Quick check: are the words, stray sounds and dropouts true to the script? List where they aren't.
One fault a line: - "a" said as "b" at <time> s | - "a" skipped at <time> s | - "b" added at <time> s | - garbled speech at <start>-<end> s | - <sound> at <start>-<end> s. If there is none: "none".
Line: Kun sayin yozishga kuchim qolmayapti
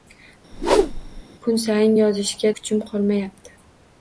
- whoosh at 0.5-1.2 s